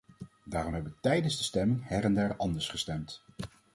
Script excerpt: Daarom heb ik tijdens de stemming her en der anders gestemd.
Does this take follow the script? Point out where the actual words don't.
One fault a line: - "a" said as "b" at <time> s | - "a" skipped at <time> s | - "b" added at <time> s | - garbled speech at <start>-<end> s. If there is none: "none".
none